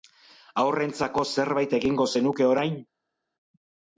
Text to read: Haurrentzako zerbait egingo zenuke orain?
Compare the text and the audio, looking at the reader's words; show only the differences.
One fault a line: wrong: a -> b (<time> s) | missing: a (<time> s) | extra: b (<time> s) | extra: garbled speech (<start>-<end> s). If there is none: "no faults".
no faults